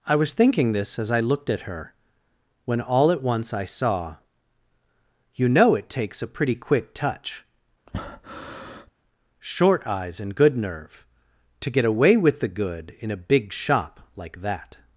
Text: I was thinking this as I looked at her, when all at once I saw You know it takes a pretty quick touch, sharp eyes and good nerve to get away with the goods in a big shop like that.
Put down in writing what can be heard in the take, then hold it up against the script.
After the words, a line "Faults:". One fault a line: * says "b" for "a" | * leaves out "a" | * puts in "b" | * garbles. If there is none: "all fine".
I was thinking this as I looked at her, when all at once I saw You know it takes a pretty quick touch, short eyes and good nerve to get away with the good in a big shop like that.
Faults:
* says "short" for "sharp"
* says "good" for "goods"